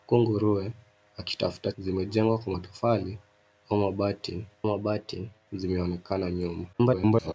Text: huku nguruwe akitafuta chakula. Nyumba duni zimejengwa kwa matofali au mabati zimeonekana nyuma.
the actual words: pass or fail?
fail